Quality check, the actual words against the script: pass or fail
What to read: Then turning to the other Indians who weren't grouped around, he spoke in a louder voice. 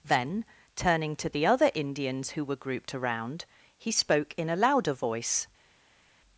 fail